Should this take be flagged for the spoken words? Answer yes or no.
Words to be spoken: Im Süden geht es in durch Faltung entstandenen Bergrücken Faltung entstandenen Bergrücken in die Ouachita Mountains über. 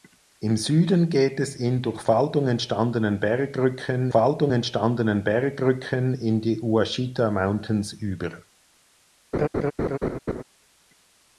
no